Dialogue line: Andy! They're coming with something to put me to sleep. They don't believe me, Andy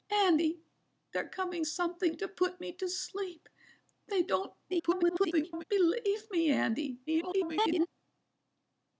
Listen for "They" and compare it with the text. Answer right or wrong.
right